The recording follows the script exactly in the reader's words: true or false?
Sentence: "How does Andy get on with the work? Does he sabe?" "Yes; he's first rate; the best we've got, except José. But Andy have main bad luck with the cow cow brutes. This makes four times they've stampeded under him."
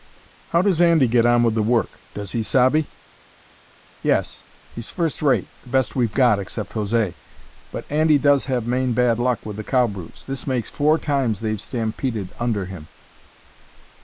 false